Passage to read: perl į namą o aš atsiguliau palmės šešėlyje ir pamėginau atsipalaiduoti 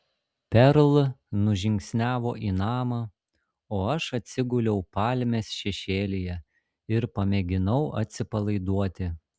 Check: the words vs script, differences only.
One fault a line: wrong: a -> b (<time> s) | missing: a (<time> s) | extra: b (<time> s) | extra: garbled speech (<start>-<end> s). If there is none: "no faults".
extra: nužingsniavo (1.5 s)